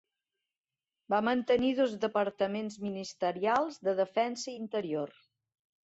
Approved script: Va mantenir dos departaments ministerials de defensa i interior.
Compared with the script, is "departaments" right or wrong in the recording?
right